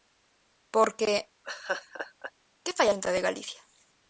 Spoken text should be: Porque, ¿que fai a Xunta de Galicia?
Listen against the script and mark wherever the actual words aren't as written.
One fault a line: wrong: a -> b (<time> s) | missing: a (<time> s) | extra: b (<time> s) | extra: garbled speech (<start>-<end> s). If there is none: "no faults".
missing: a (2.9 s)